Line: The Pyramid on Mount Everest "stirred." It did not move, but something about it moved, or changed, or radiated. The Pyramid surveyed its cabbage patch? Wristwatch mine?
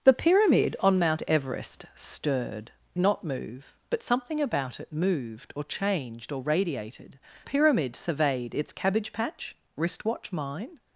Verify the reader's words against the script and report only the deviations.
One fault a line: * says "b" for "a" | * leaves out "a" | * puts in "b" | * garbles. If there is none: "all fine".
* leaves out "It did"
* leaves out "The"